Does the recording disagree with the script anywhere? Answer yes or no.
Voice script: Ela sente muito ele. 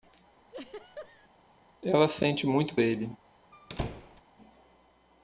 no